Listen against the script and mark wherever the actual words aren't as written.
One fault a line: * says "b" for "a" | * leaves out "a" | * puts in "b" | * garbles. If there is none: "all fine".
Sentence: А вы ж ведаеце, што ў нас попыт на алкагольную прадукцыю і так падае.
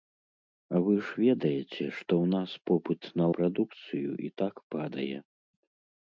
* leaves out "алкагольную"